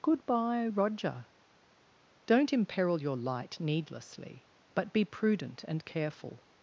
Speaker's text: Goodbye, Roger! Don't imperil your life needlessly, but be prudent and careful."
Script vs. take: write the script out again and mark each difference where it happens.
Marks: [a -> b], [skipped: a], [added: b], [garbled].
Goodbye, Roger! Don't imperil your [life -> light] needlessly, but be prudent and careful."